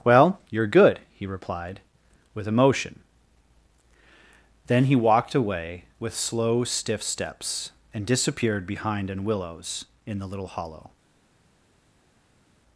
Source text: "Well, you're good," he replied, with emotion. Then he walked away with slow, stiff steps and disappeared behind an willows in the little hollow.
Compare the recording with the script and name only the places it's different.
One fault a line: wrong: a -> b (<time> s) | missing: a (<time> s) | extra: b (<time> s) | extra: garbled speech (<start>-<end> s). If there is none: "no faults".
no faults